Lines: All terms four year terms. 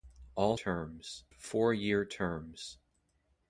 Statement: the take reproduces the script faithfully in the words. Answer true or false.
true